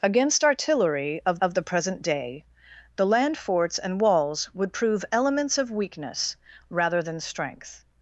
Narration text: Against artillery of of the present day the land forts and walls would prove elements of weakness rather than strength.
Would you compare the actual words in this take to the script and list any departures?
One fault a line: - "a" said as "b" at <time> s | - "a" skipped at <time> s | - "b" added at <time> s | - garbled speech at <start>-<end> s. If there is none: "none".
none